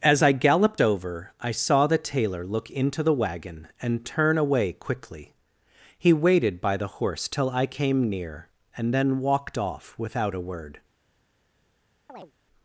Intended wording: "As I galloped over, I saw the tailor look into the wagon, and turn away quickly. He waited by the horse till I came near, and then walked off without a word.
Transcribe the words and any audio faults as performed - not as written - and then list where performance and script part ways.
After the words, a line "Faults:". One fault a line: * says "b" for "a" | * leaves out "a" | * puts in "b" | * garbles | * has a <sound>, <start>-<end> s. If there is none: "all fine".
"As I galloped over, I saw the tailor look into the wagon, and turn away quickly. He waited by the horse till I came near, and then walked off without a word.
Faults:
* has a chirp, 12.1-12.3 s